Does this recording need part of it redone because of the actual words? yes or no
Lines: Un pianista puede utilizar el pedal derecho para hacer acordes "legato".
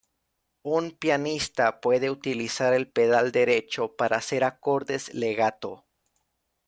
no